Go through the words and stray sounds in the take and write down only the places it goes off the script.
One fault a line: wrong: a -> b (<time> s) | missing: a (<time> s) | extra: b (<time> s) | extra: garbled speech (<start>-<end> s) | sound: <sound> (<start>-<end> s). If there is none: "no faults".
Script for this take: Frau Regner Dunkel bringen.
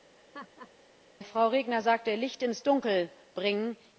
sound: laugh (0.2-0.7 s)
extra: sagte Licht ins (1.8 s)